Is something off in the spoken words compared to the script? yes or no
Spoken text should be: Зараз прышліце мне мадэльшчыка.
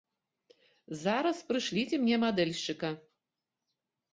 no